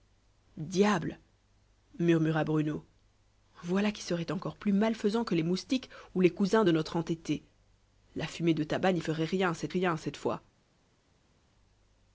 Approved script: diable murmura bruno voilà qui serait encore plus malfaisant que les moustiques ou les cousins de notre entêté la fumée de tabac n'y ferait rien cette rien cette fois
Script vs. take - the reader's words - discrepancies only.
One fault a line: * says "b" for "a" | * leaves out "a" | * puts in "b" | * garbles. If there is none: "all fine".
all fine